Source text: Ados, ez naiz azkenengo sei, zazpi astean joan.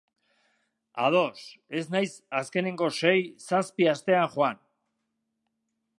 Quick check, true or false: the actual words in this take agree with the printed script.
true